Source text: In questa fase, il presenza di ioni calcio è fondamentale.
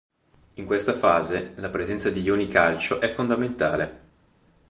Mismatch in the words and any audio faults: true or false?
true